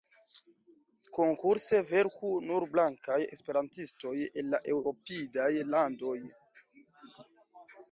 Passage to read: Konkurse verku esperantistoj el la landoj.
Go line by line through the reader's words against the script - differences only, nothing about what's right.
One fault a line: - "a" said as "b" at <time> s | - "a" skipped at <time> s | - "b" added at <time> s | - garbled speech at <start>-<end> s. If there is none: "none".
- "nur blankaj" added at 2.5 s
- "eŭropidaj" added at 4.8 s